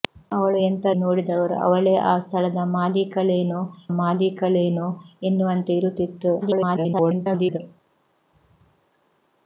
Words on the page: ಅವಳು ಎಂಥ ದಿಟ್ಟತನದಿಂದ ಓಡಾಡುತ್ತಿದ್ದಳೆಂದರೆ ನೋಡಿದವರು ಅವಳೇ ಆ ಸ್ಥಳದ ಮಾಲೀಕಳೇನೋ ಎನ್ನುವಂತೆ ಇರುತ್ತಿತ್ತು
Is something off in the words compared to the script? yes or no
yes